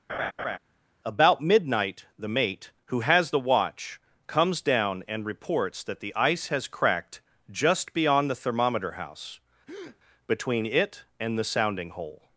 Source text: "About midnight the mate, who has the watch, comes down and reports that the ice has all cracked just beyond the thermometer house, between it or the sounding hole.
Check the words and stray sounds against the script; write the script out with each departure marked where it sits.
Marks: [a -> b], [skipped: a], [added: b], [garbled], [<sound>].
[laugh] "About midnight the mate, who has the watch, comes down and reports that the ice has [skipped: all] cracked just beyond the thermometer house, [breath] between it [or -> and] the sounding hole.